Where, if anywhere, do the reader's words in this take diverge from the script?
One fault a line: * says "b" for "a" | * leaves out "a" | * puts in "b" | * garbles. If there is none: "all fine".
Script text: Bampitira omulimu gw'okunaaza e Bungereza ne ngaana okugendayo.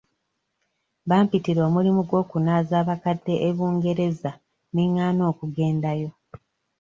* puts in "abakadde"